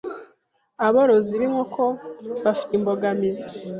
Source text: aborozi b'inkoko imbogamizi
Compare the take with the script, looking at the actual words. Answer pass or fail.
fail